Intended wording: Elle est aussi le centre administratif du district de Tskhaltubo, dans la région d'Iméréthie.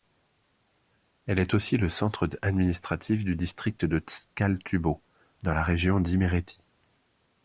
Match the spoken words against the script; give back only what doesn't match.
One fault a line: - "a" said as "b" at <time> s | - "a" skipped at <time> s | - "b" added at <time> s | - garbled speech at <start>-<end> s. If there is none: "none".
none